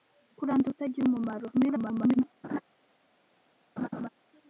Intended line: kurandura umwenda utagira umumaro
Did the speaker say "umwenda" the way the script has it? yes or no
no